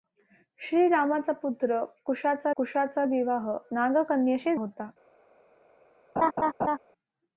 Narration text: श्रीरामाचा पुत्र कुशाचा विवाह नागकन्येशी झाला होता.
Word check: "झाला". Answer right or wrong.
wrong